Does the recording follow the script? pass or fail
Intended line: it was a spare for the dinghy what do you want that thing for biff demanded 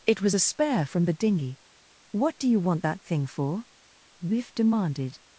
fail